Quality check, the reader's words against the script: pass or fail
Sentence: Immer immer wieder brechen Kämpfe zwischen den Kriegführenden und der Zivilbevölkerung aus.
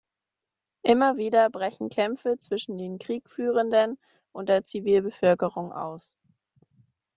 fail